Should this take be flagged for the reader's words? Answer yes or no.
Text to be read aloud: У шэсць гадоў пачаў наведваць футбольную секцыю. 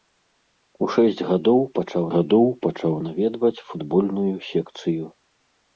yes